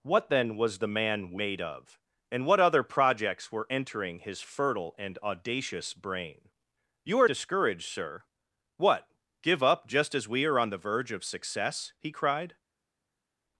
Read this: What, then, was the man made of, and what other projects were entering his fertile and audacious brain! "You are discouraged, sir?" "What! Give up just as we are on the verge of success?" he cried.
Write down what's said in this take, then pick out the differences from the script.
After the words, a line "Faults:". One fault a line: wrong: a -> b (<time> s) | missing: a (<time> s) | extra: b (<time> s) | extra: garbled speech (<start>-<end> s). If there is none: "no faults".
What, then, was the man made of, and what other projects were entering his fertile and audacious brain! "You are discouraged, sir?" "What! Give up just as we are on the verge of success?" he cried.
Faults:
no faults